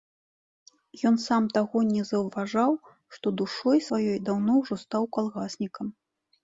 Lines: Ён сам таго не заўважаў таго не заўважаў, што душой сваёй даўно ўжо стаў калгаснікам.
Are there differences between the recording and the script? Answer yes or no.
yes